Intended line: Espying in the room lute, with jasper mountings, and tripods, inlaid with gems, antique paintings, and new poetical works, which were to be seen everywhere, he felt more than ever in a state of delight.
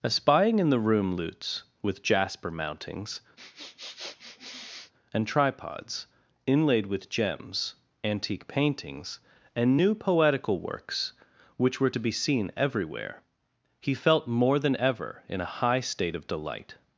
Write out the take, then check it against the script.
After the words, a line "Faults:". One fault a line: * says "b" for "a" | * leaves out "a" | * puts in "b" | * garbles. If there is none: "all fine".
Espying in the room lutes, with jasper mountings, and tripods, inlaid with gems, antique paintings, and new poetical works, which were to be seen everywhere, he felt more than ever in a high state of delight.
Faults:
* says "lutes" for "lute"
* puts in "high"